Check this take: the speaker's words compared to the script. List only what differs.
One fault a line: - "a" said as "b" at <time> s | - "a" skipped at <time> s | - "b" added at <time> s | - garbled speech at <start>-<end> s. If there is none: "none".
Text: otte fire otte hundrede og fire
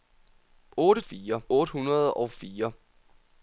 none